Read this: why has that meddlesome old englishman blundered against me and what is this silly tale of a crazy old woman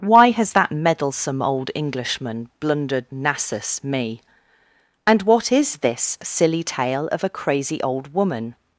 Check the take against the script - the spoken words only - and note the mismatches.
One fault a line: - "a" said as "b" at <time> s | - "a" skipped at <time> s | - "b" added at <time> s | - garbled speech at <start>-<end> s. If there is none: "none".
- "against" said as "nassus" at 3.1 s